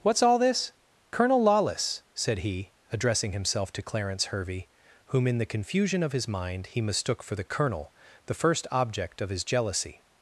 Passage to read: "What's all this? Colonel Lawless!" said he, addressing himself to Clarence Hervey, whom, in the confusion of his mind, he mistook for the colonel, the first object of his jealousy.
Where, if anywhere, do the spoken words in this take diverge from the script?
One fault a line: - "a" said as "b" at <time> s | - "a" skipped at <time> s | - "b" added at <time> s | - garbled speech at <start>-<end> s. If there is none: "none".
none